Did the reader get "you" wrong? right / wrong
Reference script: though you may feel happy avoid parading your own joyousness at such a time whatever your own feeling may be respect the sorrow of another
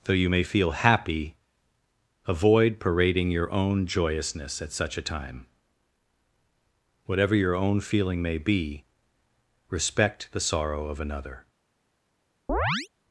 right